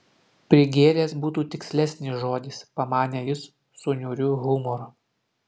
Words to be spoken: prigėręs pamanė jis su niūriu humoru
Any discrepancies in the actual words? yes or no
yes